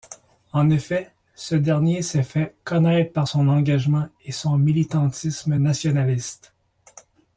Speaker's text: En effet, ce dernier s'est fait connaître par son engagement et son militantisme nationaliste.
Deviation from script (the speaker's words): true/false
false